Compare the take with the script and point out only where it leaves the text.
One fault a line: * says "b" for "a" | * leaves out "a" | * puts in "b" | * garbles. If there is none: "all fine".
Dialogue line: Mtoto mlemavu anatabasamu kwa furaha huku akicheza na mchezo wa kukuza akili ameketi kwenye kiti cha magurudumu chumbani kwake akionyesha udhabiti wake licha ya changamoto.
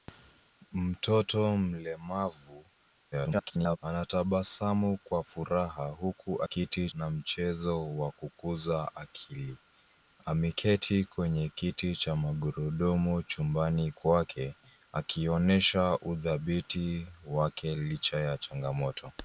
* garbles
* says "kiti" for "akicheza"